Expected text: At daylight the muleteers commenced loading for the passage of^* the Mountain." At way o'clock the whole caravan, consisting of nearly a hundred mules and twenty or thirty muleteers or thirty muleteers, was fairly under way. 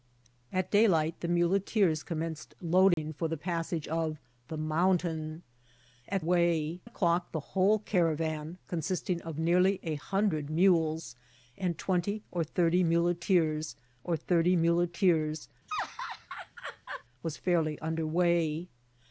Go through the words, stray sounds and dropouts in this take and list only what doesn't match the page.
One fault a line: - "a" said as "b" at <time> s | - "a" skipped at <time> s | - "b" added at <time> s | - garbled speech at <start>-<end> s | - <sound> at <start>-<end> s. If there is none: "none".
- dropout at 2.9-3.0 s
- laugh at 15.7-17.0 s